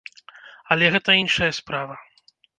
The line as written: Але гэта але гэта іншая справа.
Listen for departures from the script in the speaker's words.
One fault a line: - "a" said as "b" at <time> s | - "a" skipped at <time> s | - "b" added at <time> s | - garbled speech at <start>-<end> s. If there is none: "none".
- "але гэта" skipped at 1.2 s